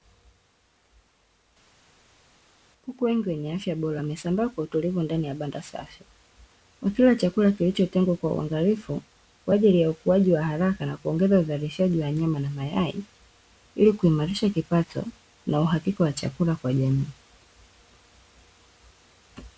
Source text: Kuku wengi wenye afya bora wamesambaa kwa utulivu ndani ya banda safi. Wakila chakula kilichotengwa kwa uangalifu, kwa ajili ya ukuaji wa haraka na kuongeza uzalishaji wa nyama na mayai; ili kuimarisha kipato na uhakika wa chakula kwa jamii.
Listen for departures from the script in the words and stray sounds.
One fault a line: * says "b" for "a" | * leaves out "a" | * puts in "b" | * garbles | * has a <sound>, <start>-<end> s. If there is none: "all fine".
all fine